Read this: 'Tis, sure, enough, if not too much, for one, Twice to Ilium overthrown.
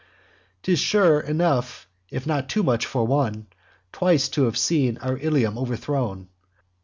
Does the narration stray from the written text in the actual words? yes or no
yes